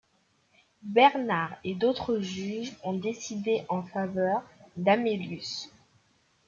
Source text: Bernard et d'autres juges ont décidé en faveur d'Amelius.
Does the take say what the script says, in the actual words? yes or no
yes